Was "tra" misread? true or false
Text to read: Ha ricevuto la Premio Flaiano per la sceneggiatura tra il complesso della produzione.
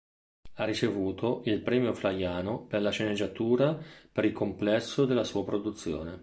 true